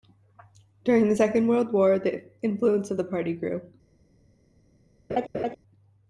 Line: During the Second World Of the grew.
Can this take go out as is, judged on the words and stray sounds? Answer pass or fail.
fail